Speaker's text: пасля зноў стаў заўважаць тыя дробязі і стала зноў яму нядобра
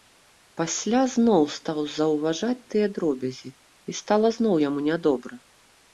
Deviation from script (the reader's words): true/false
false